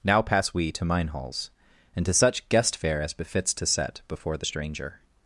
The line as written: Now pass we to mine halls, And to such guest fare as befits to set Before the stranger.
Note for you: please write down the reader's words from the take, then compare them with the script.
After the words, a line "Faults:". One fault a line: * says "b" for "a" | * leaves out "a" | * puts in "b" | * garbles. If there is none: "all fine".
Now pass we to mine halls, And to such guest fare as befits to set Before the stranger.
Faults:
all fine